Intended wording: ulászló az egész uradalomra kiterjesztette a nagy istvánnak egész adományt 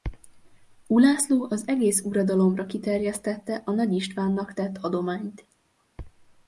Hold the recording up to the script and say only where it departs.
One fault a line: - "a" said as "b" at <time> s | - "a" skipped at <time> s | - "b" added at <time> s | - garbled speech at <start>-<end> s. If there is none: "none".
- "egész" said as "tett" at 4.5 s